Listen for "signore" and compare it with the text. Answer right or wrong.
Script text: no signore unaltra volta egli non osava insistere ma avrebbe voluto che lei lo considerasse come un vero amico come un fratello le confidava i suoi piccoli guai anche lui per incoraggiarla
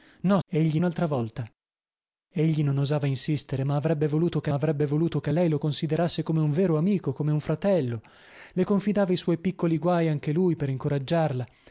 wrong